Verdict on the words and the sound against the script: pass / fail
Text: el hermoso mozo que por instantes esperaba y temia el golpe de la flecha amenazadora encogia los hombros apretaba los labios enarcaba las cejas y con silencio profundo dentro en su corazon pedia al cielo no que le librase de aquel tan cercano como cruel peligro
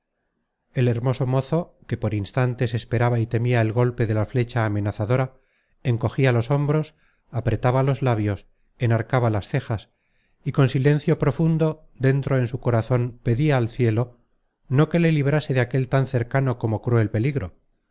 pass